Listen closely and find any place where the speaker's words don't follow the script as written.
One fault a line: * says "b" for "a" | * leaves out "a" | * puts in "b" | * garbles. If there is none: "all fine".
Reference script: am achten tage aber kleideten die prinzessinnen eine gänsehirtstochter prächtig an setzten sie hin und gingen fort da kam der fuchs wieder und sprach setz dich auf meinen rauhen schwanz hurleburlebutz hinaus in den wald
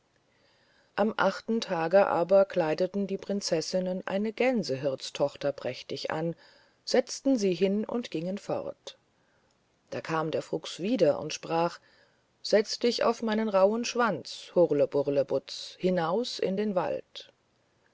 all fine